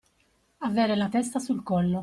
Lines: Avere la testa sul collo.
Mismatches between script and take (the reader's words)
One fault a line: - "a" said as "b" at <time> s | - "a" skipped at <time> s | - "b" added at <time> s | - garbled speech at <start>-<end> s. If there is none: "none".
none